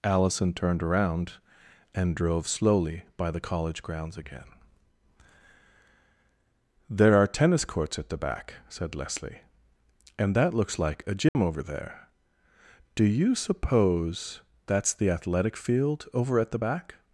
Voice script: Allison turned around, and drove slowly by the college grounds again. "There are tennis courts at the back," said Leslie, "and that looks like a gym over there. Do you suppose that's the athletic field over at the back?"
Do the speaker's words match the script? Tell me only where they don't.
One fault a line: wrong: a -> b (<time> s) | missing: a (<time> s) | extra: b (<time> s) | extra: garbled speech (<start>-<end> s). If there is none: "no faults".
no faults